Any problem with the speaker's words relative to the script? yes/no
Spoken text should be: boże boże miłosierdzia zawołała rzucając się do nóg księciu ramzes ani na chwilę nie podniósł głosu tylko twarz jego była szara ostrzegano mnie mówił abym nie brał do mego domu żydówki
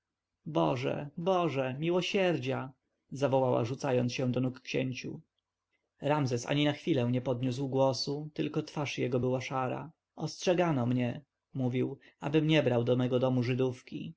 no